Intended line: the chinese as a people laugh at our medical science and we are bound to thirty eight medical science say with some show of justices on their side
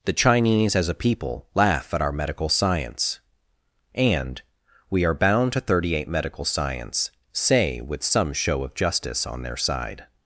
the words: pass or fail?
fail